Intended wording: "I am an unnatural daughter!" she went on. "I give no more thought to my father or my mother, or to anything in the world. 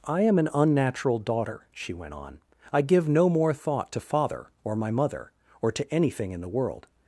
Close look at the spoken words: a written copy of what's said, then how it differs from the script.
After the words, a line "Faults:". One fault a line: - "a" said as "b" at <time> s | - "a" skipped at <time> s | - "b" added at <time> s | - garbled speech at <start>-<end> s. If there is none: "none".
"I am an unnatural daughter!" she went on. "I give no more thought to father or my mother, or to anything in the world.
Faults:
- "my" skipped at 4.0 s